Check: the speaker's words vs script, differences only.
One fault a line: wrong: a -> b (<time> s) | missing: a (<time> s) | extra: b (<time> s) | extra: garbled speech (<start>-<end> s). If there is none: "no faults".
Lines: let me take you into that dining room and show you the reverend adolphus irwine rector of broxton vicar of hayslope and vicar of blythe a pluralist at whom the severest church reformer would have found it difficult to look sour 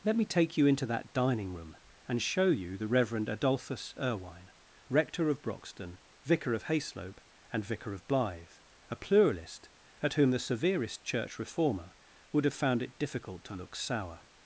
no faults